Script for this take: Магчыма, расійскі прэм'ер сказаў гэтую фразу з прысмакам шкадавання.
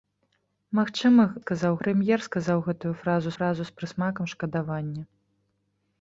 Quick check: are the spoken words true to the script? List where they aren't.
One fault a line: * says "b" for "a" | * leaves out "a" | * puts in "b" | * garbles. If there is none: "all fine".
* says "сказаў" for "расійскі"
* puts in "фразу"